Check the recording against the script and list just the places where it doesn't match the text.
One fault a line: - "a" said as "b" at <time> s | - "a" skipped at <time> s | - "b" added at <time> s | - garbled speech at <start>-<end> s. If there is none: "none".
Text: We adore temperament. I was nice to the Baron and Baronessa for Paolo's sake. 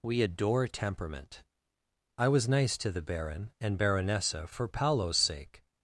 none